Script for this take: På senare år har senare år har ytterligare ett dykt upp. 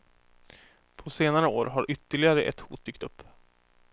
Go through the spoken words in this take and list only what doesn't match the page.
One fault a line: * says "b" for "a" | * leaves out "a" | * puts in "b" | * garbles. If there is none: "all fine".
* leaves out "senare år har"
* puts in "hot"